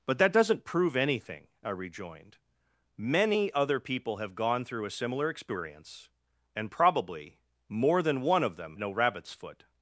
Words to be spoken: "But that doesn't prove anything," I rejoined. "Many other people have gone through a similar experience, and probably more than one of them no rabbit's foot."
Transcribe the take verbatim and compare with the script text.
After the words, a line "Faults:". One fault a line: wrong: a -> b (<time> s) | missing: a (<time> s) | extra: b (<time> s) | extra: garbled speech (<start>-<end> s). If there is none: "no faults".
"But that doesn't prove anything," I rejoined. "Many other people have gone through a similar experience, and probably more than one of them no rabbit's foot."
Faults:
no faults